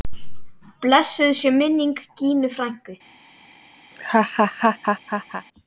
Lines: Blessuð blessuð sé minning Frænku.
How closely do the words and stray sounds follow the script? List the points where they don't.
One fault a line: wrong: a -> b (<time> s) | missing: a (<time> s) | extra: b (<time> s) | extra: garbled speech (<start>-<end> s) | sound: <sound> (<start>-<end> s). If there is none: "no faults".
missing: blessuð (1.3 s)
extra: Gínu (2.2 s)
sound: laugh (3.9-5.5 s)